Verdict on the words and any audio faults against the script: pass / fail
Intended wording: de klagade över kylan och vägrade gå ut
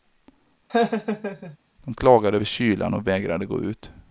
fail